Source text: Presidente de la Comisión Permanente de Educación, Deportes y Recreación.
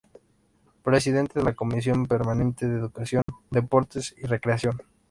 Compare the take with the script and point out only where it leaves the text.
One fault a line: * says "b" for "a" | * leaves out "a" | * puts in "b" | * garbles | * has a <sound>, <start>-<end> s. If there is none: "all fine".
* has a dropout, 3.2-3.3 s